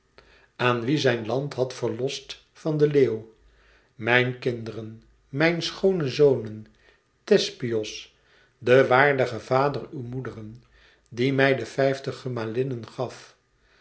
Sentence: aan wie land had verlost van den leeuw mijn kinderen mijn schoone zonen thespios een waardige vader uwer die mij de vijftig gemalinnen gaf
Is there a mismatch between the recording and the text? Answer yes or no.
yes